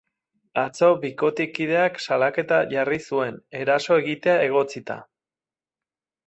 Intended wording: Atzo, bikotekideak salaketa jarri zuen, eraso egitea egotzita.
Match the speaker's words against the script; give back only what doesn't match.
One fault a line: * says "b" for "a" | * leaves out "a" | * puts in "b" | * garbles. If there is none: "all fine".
all fine